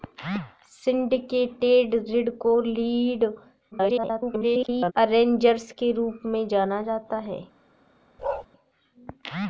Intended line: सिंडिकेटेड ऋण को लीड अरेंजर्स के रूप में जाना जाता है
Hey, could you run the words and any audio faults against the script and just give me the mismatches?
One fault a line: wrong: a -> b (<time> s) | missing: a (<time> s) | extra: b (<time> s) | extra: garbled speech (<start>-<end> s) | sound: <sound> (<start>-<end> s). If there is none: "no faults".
extra: garbled speech (3.7-4.9 s)
sound: bark (8.2-8.5 s)